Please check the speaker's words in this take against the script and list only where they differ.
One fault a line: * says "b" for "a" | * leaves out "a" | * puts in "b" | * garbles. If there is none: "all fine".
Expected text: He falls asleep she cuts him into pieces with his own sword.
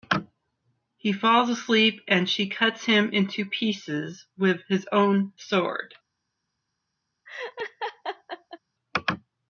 * puts in "and"